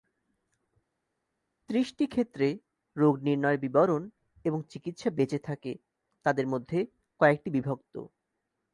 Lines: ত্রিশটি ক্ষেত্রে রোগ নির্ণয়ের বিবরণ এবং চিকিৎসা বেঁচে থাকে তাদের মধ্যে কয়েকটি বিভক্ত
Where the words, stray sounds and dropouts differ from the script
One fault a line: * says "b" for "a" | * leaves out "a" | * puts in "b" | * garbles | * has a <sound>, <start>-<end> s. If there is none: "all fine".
all fine